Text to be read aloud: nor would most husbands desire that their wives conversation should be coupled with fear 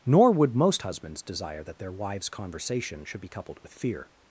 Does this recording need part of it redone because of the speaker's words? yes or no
no